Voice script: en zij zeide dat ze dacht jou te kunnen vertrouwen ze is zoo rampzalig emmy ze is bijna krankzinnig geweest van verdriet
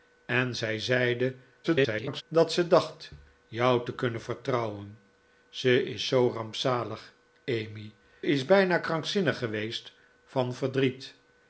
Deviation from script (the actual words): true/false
true